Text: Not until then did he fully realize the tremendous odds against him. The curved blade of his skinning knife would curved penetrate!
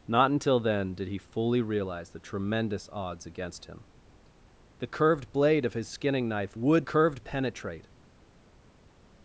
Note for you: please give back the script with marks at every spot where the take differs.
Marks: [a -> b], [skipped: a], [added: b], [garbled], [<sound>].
Not until then did he fully realize the tremendous odds against him. The curved blade of his skinning knife would curved penetrate!